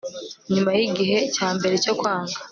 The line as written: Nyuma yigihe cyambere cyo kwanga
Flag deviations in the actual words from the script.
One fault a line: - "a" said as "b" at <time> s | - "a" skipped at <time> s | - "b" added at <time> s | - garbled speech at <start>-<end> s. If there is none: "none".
none